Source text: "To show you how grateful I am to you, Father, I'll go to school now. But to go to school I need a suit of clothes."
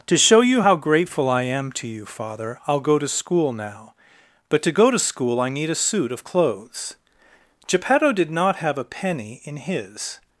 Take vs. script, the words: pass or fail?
fail